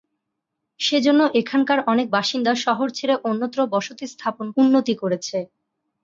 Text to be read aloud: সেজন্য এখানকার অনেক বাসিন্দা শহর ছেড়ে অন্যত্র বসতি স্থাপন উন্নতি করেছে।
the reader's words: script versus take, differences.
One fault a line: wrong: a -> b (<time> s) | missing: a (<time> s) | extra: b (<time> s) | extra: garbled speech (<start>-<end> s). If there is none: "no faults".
no faults